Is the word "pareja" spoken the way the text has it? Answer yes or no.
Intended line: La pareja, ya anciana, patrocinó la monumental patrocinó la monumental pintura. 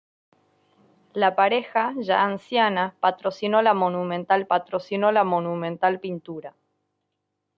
yes